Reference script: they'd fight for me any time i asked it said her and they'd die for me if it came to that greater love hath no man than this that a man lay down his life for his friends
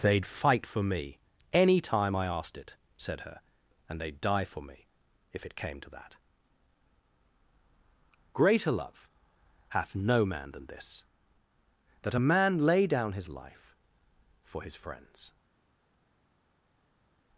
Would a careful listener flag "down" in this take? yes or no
no